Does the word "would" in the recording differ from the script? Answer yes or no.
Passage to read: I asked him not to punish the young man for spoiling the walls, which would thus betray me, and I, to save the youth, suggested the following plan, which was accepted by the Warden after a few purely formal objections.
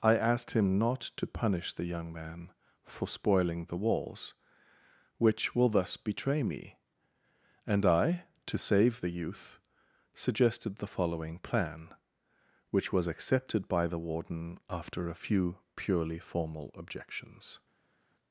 yes